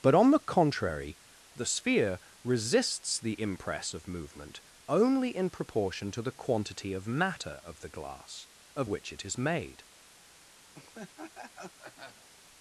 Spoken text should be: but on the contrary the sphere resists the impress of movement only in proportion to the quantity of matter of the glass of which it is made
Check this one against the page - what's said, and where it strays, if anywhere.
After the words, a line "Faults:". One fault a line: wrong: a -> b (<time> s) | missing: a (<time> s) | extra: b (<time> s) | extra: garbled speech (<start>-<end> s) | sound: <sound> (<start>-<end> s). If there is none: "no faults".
but on the contrary the sphere resists the impress of movement only in proportion to the quantity of matter of the glass of which it is made
Faults:
sound: laugh (10.7-12.3 s)